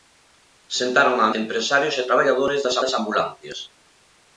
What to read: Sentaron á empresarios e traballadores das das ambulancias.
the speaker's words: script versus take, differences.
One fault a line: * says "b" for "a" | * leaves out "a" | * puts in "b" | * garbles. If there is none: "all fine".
all fine